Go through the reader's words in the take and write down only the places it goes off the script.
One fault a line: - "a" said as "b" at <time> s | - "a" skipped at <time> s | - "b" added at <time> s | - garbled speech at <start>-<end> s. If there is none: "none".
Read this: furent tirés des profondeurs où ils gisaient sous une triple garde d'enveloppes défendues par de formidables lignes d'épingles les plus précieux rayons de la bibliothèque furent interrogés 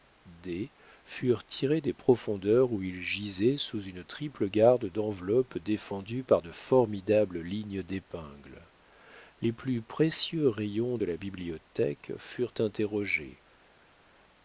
none